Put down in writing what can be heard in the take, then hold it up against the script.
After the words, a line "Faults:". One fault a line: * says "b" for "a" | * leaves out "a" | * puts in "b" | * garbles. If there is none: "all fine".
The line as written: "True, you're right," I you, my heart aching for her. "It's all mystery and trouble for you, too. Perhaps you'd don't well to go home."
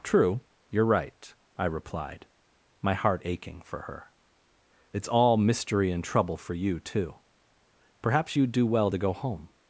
"True, you're right," I replied, my heart aching for her. "It's all mystery and trouble for you, too. Perhaps you'd do well to go home."
Faults:
* says "replied" for "you"
* says "do" for "don't"